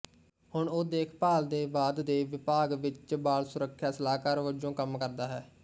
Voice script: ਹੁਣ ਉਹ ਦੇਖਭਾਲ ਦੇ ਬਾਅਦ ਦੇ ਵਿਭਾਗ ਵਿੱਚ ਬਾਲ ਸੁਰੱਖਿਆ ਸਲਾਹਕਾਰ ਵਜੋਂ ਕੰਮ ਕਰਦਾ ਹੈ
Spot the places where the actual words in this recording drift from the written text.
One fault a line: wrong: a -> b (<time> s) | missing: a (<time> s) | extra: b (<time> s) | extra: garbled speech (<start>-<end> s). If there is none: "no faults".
no faults